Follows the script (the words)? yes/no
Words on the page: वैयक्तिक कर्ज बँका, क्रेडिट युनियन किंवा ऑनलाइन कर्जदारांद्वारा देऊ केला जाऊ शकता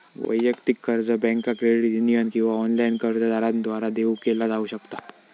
yes